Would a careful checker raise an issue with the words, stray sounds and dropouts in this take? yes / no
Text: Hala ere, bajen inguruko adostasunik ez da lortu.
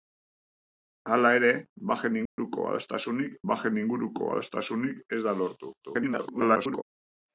yes